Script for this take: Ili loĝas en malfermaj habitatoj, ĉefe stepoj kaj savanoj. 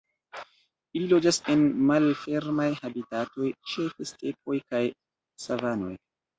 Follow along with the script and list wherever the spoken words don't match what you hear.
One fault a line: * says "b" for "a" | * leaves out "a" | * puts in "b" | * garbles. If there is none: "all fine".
all fine